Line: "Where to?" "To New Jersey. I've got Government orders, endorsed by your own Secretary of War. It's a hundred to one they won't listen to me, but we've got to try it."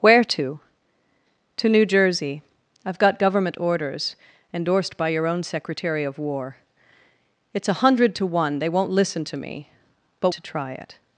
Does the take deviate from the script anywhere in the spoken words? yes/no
yes